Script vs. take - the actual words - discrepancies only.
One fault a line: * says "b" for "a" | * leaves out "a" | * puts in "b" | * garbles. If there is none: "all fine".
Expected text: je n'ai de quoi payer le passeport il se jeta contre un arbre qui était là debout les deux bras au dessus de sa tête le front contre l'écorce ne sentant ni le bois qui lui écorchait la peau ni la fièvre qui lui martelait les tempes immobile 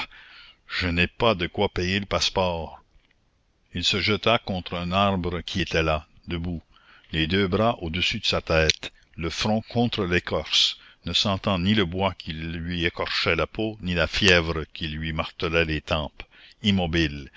* puts in "pas"